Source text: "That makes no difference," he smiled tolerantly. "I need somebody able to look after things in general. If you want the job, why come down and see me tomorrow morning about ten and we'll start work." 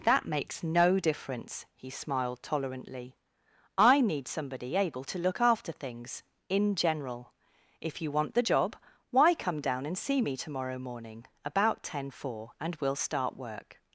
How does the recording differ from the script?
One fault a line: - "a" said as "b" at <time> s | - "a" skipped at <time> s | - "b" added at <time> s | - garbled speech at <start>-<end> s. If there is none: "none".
- "four" added at 12.1 s